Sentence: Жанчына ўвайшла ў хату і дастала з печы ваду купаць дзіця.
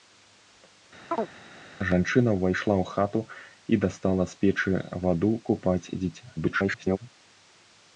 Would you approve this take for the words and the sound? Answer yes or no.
no